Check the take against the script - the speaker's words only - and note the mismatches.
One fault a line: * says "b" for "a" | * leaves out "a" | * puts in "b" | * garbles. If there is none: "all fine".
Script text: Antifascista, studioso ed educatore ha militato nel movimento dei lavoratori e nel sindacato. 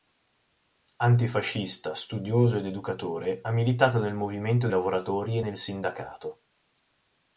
* leaves out "dei"